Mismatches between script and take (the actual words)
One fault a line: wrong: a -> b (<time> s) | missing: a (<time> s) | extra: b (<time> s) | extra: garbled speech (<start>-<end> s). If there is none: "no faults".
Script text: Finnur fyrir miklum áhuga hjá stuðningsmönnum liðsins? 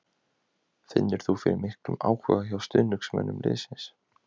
extra: þú (1.2 s)